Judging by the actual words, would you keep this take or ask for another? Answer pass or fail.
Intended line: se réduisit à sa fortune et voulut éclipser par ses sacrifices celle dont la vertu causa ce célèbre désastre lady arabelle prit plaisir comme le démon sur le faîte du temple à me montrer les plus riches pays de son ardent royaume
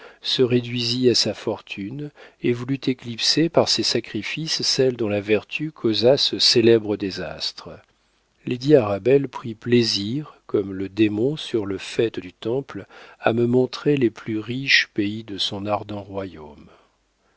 pass